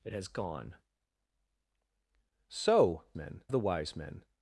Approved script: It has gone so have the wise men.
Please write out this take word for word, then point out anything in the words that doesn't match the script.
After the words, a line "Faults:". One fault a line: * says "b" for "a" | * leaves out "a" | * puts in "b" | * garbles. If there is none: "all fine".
It has gone so men the wise men.
Faults:
* says "men" for "have"